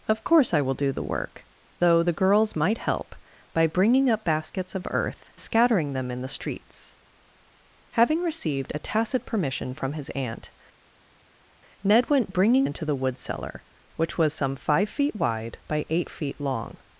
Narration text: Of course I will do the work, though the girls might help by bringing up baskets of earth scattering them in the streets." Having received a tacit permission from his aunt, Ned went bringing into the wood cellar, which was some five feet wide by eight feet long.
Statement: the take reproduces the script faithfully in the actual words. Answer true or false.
true